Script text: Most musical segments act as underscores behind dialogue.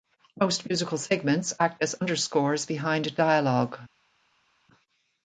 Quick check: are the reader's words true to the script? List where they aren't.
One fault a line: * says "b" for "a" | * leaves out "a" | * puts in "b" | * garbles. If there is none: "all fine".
all fine